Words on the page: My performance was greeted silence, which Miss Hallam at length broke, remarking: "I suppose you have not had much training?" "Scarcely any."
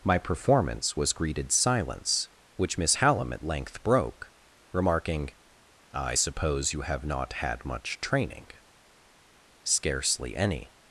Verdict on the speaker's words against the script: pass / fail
pass